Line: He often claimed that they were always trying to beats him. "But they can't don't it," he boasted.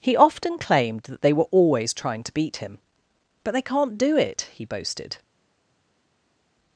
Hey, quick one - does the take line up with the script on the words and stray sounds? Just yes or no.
no